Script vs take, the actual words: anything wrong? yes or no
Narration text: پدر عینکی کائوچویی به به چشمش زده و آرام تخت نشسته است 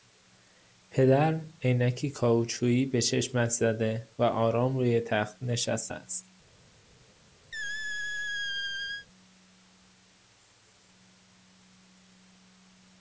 yes